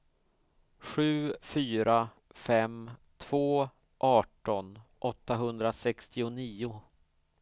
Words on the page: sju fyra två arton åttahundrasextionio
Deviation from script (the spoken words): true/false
true